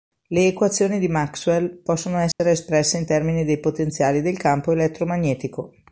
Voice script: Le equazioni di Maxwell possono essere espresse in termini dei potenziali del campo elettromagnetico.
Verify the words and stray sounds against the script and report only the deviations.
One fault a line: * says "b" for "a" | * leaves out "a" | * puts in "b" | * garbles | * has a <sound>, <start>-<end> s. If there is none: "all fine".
* has a dropout, 2.3-2.4 s